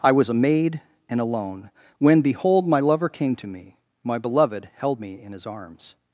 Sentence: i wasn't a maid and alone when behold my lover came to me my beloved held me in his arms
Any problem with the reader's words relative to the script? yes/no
yes